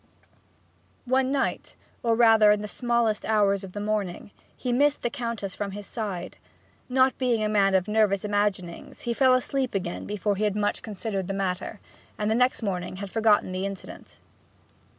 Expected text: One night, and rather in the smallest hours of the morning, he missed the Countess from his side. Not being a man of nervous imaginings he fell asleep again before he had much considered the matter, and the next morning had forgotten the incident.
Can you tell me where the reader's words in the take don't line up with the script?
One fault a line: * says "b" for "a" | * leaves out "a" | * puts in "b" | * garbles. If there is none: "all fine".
* says "or" for "and"